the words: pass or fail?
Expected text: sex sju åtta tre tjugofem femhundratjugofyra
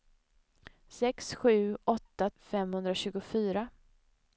fail